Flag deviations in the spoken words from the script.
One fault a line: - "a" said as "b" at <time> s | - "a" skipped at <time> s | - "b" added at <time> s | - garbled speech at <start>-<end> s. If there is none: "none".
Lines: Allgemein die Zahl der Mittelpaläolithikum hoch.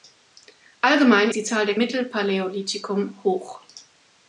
none